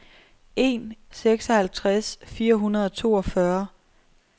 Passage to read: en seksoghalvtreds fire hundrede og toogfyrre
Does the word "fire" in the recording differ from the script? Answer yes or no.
no